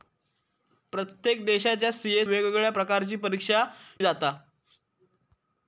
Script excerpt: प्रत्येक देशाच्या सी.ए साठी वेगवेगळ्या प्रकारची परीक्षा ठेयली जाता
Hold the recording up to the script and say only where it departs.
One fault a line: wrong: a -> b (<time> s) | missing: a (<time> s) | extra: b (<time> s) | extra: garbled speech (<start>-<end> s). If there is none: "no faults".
missing: साठी (2.2 s)
missing: ठेयली (3.6 s)